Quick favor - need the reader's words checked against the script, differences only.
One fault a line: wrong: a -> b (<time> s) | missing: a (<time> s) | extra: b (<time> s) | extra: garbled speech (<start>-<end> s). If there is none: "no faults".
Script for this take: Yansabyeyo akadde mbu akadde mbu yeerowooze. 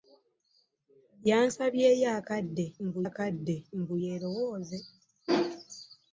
no faults